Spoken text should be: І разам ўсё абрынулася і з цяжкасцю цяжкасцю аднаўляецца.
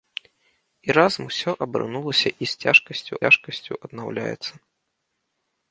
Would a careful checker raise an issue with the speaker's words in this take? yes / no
no